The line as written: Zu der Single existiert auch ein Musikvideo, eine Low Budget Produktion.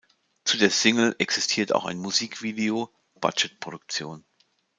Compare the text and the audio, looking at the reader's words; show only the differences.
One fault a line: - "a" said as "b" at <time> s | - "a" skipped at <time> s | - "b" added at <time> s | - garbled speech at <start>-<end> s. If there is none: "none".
- "eine Low" skipped at 2.9 s